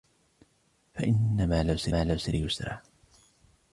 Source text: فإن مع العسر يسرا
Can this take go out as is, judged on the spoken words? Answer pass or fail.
fail